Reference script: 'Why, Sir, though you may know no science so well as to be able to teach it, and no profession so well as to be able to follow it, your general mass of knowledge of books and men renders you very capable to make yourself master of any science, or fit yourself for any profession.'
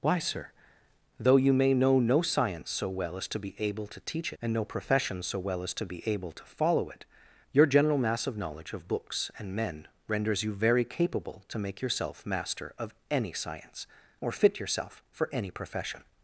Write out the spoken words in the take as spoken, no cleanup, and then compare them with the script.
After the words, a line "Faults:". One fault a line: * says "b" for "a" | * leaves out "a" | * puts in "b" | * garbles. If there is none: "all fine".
'Why, Sir, though you may know no science so well as to be able to teach and no profession so well as to be able to follow it, your general mass of knowledge of books and men renders you very capable to make yourself master of any science, or fit yourself for any profession.'
Faults:
* leaves out "it"